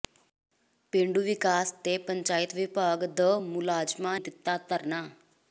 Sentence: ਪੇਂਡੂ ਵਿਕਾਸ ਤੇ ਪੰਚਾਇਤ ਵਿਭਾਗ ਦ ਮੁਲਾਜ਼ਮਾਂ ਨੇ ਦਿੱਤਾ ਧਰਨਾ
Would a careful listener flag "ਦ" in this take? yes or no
no